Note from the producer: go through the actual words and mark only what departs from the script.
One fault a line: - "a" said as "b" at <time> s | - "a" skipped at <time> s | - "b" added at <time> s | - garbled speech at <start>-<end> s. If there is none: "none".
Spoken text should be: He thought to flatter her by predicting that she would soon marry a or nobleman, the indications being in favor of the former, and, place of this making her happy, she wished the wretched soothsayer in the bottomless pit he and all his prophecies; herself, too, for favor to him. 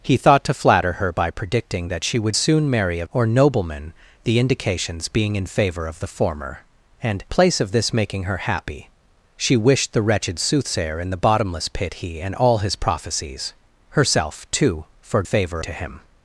none